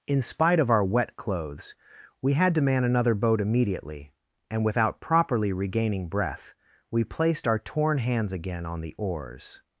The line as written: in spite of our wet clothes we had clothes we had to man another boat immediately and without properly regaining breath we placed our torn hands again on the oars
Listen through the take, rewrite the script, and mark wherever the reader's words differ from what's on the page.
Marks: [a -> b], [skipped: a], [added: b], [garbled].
in spite of our wet clothes we had [skipped: clothes we had] to man another boat immediately and without properly regaining breath we placed our torn hands again on the oars